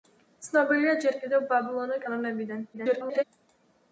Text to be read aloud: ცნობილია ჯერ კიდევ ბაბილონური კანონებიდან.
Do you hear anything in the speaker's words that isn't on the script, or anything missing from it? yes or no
yes